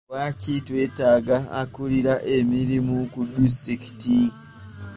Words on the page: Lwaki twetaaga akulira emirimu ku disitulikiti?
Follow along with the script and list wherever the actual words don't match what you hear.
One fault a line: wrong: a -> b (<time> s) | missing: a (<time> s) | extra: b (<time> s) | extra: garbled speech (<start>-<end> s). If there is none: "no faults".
no faults